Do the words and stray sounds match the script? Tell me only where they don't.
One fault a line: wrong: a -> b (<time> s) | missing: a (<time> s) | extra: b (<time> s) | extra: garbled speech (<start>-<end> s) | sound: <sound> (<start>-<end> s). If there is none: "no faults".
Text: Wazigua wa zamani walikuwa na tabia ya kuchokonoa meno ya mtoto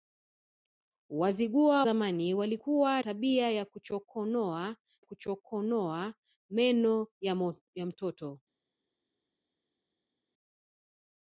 missing: wa (1.9 s)
missing: na (3.0 s)
extra: kuchokonoa (5.0 s)